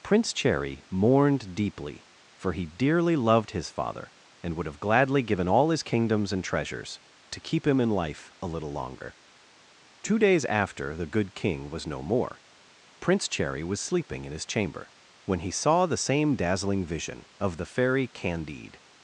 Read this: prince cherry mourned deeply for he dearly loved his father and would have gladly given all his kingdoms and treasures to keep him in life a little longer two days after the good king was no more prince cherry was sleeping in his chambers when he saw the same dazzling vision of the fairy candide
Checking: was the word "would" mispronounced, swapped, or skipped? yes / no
no